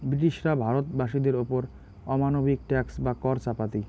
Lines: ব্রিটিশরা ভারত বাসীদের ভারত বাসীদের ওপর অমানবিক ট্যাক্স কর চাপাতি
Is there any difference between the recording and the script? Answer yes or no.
yes